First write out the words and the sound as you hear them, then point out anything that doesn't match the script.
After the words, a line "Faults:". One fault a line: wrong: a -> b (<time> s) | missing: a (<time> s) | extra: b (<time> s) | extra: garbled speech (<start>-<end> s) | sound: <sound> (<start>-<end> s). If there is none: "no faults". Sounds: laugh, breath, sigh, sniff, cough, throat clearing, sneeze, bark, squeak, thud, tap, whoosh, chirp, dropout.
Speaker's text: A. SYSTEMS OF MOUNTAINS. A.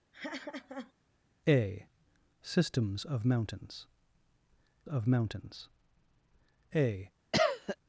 A. SYSTEMS OF MOUNTAINS OF MOUNTAINS. A.
Faults:
sound: laugh (0.1-0.9 s)
extra: OF MOUNTAINS (4.9 s)
sound: cough (7.3-7.8 s)